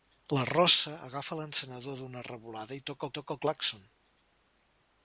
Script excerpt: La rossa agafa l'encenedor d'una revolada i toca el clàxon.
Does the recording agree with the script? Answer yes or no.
no